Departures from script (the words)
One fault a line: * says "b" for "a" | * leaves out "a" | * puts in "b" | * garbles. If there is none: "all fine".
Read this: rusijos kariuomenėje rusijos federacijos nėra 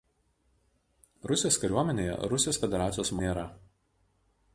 all fine